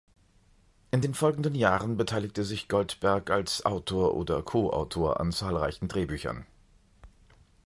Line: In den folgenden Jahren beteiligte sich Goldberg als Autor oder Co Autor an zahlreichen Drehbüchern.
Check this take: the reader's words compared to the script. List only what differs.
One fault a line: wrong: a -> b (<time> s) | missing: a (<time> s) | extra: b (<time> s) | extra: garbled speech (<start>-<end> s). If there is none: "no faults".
no faults